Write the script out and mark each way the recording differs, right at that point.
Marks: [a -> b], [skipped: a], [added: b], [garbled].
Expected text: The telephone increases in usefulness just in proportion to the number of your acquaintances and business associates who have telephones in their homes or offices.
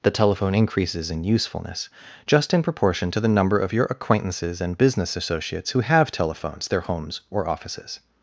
The telephone increases in usefulness just in proportion to the number of your acquaintances and business associates who have telephones [skipped: in] their homes or offices.